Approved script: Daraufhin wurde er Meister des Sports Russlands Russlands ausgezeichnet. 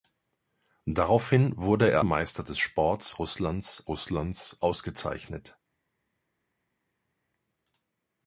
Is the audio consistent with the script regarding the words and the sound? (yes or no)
yes